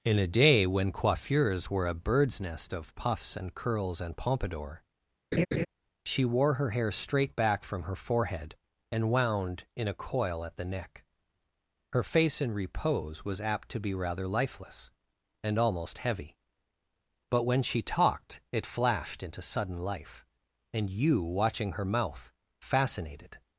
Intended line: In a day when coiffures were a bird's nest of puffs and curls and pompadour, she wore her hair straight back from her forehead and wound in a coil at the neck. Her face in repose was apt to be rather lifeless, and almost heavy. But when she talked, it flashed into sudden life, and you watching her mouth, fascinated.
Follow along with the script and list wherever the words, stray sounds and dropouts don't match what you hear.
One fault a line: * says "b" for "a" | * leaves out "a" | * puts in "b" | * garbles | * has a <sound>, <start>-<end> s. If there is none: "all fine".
* has a laugh, 5.3-5.7 s